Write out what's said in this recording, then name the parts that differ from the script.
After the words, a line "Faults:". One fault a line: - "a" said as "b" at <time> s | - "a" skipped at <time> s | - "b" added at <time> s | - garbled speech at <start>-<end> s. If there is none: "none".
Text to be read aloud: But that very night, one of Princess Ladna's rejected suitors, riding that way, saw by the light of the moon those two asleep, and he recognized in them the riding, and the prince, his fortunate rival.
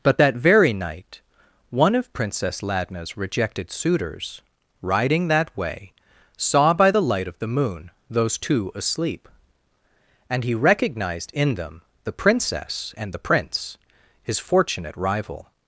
But that very night, one of Princess Ladna's rejected suitors, riding that way, saw by the light of the moon those two asleep, and he recognized in them the princess, and the prince, his fortunate rival.
Faults:
- "riding" said as "princess" at 12.1 s